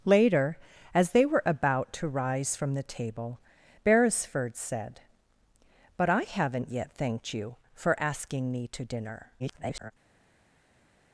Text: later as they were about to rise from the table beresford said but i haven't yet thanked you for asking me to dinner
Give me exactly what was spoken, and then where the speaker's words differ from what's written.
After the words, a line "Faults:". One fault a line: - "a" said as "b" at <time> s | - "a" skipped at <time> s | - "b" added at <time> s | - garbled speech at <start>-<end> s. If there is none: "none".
later as they were about to rise from the table beresford said but i haven't yet thanked you for asking me to dinner [garbled]
Faults:
- garbled speech at 9.4-9.9 s